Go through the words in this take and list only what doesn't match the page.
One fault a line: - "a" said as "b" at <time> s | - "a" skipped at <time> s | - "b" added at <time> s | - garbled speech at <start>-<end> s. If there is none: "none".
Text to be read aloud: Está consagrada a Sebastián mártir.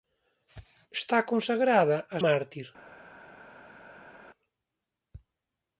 - "Sebastián" skipped at 2.2 s